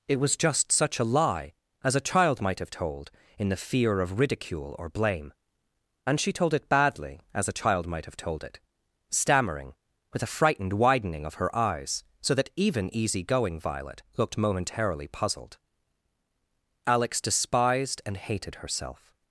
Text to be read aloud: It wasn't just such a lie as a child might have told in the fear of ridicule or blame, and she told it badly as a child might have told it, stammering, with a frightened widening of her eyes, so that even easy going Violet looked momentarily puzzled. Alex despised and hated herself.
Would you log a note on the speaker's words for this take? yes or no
yes